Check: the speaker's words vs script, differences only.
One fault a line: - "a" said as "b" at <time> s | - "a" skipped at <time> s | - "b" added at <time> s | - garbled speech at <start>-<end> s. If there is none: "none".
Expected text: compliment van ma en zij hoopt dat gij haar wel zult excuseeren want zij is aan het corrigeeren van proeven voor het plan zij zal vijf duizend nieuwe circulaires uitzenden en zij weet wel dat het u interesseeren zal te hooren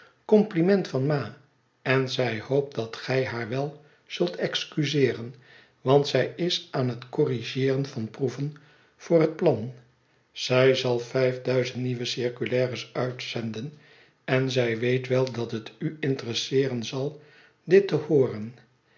- "dit" added at 17.6 s